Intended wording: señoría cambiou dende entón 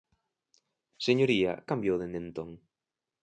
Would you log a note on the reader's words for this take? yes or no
no